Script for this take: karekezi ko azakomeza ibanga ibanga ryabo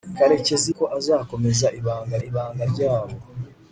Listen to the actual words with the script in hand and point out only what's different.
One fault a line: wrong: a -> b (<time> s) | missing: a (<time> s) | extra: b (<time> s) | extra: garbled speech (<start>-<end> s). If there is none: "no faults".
no faults